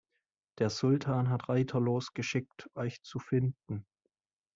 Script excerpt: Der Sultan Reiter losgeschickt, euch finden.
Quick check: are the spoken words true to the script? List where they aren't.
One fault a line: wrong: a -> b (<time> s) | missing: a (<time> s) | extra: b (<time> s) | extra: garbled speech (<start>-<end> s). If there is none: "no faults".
extra: hat (1.3 s)
extra: zu (3.0 s)